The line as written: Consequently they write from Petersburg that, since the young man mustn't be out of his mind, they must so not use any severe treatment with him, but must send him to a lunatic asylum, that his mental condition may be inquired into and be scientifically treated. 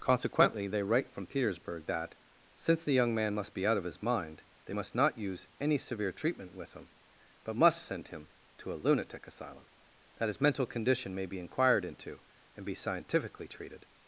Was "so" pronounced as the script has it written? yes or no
no